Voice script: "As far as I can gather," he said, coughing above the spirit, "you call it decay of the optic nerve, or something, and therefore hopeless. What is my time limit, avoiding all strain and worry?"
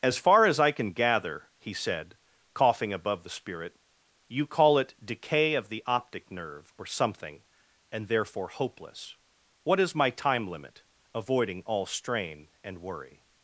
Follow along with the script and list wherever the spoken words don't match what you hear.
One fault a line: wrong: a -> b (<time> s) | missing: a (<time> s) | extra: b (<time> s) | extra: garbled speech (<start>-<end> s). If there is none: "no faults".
no faults